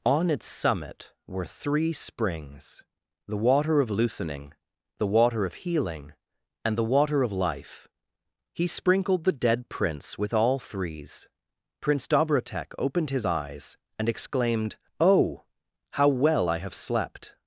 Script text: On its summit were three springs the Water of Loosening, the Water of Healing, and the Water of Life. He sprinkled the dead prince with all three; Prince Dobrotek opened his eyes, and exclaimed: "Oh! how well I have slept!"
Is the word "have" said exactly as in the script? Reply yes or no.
yes